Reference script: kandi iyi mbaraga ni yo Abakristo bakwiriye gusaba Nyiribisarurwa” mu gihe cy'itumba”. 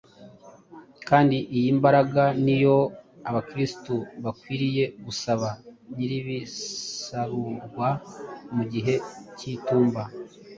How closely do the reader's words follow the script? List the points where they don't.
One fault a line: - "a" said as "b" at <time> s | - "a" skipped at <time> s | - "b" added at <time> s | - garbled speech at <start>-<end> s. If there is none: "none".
none